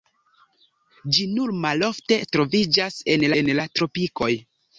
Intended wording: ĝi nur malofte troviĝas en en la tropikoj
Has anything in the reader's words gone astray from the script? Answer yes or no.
no